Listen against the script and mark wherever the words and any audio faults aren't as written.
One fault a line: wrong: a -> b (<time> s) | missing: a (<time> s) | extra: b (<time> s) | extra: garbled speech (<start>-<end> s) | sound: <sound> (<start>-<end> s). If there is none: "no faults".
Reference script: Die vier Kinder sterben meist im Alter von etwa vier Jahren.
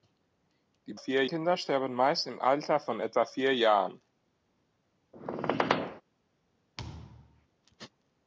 sound: squeak (5.1-6.0 s)
sound: thud (6.8-7.5 s)